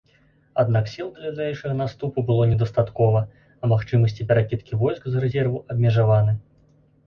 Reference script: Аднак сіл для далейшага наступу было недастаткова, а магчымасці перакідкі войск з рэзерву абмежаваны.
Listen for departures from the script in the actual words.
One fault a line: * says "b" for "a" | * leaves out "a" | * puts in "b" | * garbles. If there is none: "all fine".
all fine